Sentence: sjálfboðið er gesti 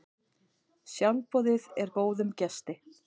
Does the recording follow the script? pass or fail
fail